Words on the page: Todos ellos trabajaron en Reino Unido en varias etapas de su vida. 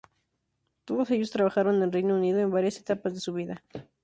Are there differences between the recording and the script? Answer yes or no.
no